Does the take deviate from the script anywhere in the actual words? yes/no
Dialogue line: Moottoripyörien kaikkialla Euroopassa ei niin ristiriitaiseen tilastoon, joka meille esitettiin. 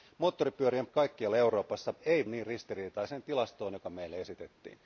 no